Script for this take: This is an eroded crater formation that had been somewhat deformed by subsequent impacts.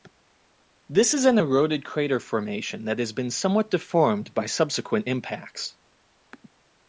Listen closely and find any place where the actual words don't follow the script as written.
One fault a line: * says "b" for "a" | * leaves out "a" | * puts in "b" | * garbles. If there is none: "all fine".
* says "has" for "had"